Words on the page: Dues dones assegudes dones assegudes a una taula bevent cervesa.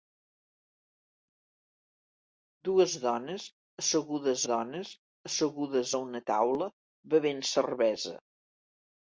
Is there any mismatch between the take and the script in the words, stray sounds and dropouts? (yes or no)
no